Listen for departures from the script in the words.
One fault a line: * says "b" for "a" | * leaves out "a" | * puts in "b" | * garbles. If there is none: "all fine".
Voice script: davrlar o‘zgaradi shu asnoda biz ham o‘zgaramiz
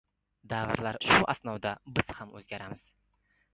* leaves out "o‘zgaradi"